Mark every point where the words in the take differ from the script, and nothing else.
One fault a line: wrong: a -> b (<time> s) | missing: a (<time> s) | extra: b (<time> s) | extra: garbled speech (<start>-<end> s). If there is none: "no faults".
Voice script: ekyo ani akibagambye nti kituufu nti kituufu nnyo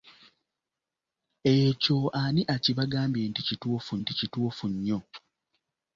no faults